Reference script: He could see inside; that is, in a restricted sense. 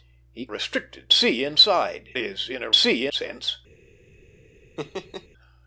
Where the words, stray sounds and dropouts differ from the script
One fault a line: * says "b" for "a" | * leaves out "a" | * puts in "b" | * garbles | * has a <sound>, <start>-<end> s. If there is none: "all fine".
* says "restricted" for "could"
* leaves out "that"
* says "see" for "restricted"
* has a laugh, 4.8-5.3 s